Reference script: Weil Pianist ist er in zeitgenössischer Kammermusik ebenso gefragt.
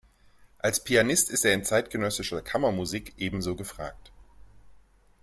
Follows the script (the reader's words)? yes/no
no